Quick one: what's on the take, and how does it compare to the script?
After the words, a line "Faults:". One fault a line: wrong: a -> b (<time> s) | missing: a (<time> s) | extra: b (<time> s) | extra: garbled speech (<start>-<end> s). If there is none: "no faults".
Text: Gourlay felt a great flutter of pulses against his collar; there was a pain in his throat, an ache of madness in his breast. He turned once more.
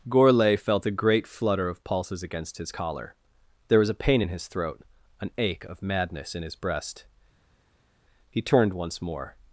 Gourlay felt a great flutter of pulses against his collar; there was a pain in his throat, an ache of madness in his breast. He turned once more.
Faults:
no faults